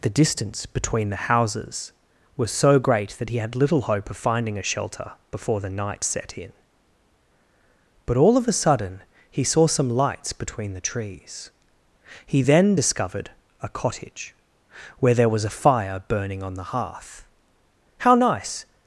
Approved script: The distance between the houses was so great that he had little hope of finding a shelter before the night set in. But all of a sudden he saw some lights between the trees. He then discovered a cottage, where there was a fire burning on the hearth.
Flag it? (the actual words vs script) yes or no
yes